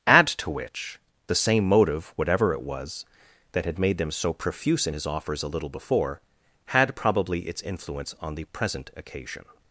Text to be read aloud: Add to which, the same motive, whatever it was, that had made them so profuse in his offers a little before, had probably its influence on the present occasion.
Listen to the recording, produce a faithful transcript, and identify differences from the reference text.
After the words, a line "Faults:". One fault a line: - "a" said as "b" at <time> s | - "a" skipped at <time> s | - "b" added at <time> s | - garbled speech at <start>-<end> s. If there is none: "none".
Add to which, the same motive, whatever it was, that had made them so profuse in his offers a little before, had probably its influence on the present occasion.
Faults:
none